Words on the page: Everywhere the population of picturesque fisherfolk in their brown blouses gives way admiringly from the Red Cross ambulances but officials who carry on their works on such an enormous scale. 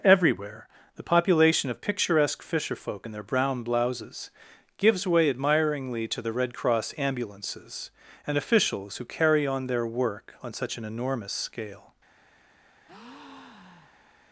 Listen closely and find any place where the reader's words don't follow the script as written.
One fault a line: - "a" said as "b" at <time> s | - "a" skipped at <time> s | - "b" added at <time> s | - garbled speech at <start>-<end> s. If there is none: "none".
- "from" said as "to" at 6.1 s
- "but" said as "and" at 8.2 s
- "works" said as "work" at 9.8 s